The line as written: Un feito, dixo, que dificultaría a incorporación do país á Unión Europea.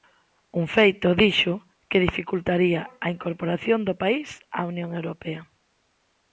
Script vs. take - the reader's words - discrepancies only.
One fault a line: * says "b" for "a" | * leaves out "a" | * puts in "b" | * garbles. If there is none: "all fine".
all fine